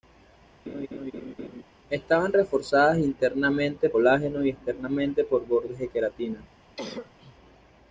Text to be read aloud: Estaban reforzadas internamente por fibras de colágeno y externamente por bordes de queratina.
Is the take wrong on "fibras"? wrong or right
wrong